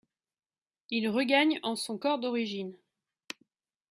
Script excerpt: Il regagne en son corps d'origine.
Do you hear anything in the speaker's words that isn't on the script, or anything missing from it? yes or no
no